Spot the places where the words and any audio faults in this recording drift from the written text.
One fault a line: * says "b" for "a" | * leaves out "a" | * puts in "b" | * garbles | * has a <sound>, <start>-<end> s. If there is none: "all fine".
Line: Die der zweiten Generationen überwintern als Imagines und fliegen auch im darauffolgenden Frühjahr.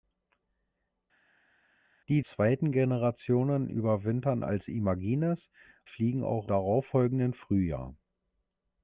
* leaves out "der"
* leaves out "und"
* leaves out "im"